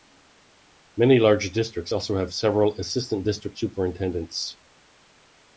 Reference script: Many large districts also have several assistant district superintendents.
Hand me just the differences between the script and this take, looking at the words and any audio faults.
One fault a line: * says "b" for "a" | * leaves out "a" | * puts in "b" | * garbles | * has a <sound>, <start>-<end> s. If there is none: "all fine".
all fine